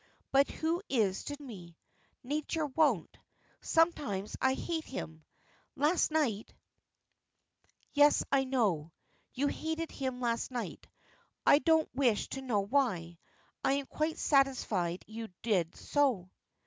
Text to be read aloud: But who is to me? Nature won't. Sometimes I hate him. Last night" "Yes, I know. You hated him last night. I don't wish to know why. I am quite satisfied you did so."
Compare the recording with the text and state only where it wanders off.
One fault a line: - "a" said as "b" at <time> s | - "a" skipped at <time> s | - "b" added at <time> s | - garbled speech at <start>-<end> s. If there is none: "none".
none